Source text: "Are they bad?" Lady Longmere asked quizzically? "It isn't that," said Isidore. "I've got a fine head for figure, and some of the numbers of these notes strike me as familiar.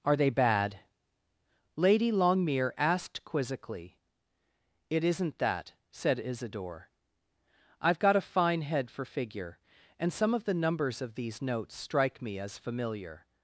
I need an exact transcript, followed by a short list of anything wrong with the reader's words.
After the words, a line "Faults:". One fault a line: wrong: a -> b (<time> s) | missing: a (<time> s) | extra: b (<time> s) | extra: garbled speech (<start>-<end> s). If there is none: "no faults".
"Are they bad?" Lady Longmere asked quizzically? "It isn't that," said Isidore. "I've got a fine head for figure, and some of the numbers of these notes strike me as familiar.
Faults:
no faults